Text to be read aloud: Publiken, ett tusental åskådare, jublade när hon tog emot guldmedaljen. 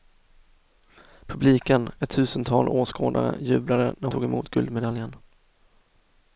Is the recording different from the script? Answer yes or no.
yes